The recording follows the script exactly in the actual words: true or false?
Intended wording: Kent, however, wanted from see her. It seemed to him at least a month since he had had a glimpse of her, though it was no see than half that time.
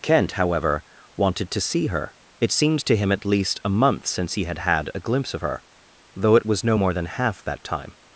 false